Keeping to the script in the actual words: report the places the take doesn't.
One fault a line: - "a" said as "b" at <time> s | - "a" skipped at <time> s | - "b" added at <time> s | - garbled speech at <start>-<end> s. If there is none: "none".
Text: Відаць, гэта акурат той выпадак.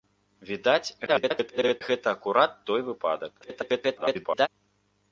- garbled speech at 1.1-1.8 s
- garbled speech at 3.4-4.5 s